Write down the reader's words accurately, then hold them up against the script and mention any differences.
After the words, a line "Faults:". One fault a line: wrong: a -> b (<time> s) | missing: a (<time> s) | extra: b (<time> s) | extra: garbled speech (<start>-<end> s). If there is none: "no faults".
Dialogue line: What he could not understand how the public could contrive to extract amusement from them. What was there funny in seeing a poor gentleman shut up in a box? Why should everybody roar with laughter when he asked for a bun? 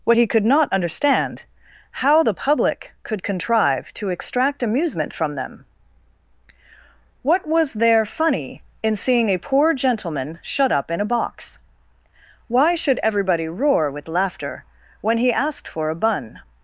What he could not understand how the public could contrive to extract amusement from them. What was there funny in seeing a poor gentleman shut up in a box? Why should everybody roar with laughter when he asked for a bun?
Faults:
no faults